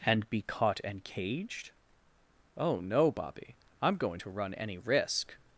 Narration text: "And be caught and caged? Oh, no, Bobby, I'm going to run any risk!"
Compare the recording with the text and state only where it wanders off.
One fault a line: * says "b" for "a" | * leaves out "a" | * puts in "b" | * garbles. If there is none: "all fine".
all fine